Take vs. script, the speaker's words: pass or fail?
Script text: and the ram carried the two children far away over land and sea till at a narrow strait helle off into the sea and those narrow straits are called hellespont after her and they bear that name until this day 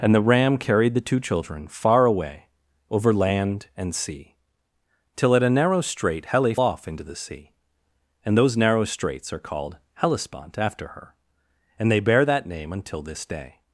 pass